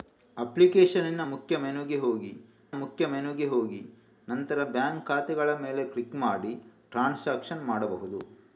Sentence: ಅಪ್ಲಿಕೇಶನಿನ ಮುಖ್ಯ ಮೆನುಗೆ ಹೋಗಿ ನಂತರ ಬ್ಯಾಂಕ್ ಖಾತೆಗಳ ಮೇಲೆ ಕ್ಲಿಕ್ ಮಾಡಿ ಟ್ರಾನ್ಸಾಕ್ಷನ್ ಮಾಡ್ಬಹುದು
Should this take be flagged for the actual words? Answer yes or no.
yes